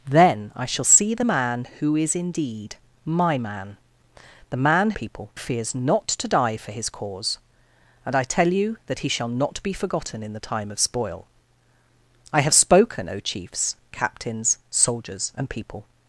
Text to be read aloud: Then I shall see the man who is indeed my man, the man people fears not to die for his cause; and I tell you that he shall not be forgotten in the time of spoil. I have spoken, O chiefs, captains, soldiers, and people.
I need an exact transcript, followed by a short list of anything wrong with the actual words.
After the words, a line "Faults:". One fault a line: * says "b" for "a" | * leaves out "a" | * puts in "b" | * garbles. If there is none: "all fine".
Then I shall see the man who is indeed my man, the man people fears not to die for his cause; and I tell you that he shall not be forgotten in the time of spoil. I have spoken, O chiefs, captains, soldiers, and people.
Faults:
all fine